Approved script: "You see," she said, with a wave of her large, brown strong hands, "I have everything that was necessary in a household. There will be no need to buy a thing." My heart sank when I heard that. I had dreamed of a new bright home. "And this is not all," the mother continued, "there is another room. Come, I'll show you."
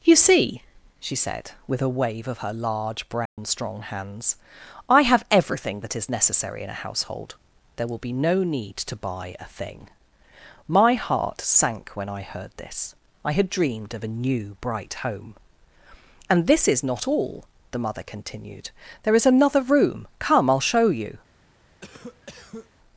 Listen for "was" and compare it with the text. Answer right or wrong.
wrong